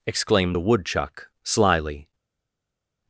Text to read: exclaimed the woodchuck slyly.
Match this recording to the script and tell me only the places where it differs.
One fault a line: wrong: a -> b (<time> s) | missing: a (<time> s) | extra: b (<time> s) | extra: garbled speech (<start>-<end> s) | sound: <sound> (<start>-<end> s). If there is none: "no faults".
no faults